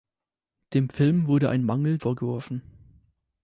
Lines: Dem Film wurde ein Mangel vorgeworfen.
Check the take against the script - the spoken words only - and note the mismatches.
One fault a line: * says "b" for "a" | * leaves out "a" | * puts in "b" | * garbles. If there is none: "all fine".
all fine